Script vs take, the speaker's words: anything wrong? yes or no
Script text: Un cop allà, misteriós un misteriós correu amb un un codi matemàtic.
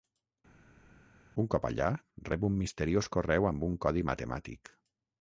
yes